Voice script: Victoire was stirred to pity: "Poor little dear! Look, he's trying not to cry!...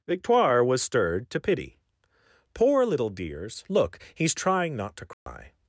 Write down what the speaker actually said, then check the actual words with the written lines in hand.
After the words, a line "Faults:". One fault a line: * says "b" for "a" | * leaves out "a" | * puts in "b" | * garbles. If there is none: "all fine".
Victoire was stirred to pity: "Poor little dears! Look, he's trying not to cry!...
Faults:
* says "dears" for "dear"